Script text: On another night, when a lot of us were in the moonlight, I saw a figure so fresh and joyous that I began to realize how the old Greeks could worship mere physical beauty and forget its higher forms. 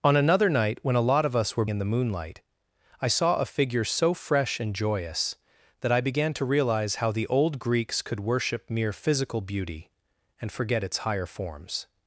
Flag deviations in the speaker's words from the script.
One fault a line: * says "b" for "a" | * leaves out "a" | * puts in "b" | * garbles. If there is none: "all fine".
all fine